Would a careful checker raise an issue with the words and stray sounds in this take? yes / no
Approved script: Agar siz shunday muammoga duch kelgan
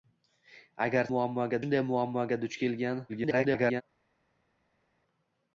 yes